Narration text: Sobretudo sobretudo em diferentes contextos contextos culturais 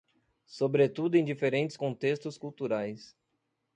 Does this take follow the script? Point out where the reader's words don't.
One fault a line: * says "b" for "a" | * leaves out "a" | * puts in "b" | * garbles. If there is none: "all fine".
* leaves out "sobretudo"
* leaves out "contextos"